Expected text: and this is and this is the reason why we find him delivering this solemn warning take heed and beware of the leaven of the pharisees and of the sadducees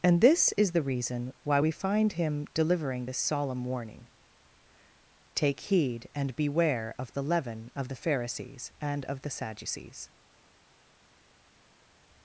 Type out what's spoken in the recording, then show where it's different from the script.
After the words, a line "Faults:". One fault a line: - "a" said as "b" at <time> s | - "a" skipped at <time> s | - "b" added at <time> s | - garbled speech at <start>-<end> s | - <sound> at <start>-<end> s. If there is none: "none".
and this is the reason why we find him delivering this solemn warning take heed and beware of the leaven of the pharisees and of the sadducees
Faults:
- "and this is" skipped at 0.7 s